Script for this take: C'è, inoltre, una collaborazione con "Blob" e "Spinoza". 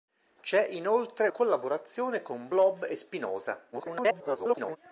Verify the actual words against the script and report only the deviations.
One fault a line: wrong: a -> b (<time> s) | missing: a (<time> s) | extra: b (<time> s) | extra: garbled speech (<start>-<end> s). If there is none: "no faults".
missing: una (1.3 s)
extra: garbled speech (3.7-4.8 s)